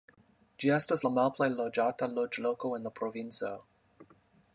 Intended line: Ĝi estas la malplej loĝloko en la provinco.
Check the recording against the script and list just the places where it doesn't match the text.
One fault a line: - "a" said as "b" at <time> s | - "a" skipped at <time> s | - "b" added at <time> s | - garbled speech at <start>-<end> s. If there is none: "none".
- "loĝata" added at 1.6 s